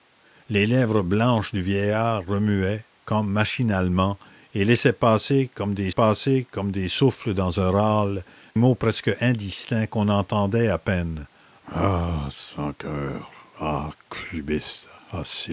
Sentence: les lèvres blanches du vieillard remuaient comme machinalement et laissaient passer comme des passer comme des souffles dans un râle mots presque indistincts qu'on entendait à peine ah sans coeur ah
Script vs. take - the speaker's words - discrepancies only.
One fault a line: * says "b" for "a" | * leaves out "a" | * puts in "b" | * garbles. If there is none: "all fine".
all fine